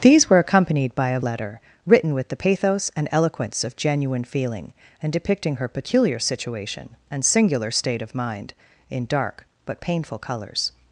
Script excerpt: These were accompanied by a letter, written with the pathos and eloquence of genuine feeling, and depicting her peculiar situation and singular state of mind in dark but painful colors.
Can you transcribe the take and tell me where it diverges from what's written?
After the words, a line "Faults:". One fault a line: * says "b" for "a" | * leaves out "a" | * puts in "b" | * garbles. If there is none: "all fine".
These were accompanied by a letter, written with the pathos and eloquence of genuine feeling, and depicting her peculiar situation and singular state of mind in dark but painful colors.
Faults:
all fine